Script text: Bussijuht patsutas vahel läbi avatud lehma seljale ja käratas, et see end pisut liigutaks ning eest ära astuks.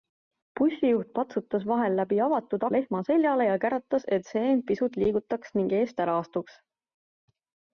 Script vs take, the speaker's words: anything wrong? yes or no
no